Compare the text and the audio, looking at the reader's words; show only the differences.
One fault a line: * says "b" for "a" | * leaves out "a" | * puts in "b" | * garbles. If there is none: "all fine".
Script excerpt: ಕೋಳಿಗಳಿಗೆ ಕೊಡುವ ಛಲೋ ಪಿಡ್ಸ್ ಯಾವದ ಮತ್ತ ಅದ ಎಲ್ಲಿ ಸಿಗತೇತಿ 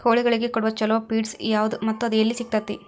all fine